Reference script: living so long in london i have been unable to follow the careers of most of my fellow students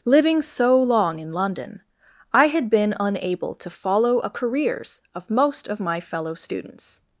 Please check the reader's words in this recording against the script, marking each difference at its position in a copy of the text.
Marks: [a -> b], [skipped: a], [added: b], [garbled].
living so long in london i [have -> had] been unable to follow [the -> a] careers of most of my fellow students